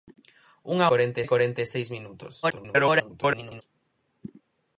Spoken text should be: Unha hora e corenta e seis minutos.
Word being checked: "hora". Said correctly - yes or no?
no